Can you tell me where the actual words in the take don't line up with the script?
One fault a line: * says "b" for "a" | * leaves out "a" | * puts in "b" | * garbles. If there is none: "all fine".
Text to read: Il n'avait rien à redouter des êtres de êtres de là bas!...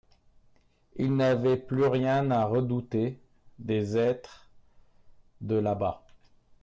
* puts in "plus"
* leaves out "êtres de"